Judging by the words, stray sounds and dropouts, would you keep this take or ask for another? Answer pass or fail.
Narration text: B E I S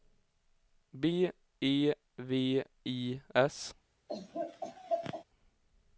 fail